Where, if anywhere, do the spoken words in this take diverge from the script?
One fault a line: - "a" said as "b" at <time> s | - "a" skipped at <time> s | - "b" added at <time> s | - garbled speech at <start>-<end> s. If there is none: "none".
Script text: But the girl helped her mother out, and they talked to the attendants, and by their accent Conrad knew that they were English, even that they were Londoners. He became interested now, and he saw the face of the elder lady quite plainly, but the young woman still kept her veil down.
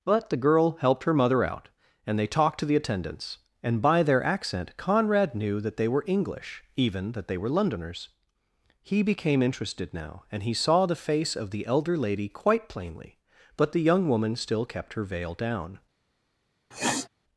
none